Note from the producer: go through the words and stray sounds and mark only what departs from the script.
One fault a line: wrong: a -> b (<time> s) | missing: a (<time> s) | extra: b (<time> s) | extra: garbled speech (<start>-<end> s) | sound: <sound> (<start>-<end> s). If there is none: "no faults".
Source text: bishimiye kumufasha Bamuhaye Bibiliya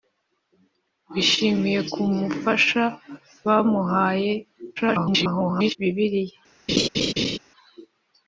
extra: garbled speech (4.8-5.8 s)
sound: laugh (6.7-7.4 s)